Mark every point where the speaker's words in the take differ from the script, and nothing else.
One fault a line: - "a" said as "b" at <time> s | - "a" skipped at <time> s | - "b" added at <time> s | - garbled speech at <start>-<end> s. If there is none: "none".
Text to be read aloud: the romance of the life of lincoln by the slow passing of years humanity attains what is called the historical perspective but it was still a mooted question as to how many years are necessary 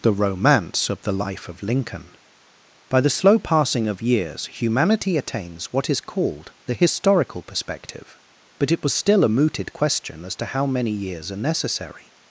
none